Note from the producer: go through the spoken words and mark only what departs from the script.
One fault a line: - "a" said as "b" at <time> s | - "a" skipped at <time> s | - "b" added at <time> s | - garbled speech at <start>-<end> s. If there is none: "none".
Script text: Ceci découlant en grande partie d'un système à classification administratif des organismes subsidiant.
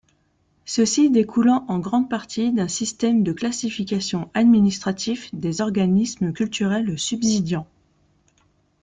- "à" said as "de" at 3.2 s
- "culturels" added at 6.3 s